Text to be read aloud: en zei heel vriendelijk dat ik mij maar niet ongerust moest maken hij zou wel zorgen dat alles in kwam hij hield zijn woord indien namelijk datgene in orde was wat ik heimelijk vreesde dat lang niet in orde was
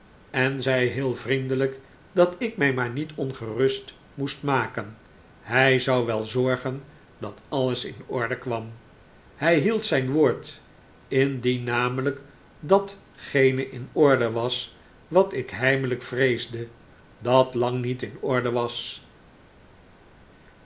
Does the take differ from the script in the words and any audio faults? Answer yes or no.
yes